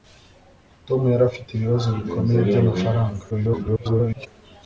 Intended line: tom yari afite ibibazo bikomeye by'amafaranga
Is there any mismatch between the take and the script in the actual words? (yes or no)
yes